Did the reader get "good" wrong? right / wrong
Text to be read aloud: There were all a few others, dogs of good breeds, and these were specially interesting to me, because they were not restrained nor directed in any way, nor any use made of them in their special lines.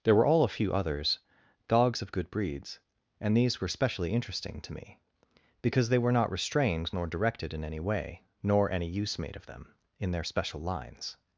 right